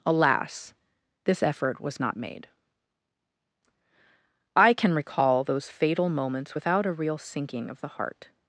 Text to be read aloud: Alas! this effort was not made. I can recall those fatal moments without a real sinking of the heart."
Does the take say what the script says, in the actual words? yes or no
yes